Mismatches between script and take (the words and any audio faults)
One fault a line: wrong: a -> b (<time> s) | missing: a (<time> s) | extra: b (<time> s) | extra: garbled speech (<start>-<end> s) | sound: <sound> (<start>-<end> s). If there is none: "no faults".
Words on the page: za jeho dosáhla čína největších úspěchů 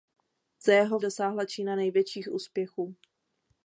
no faults